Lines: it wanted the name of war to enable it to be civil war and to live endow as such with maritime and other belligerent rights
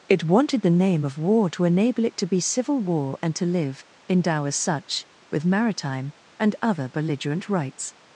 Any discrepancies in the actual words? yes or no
no